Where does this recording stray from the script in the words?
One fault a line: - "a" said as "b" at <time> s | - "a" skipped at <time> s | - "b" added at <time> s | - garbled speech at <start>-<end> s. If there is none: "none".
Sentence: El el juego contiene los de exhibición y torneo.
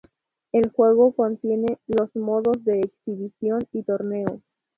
- "el" skipped at 0.7 s
- "modos" added at 2.1 s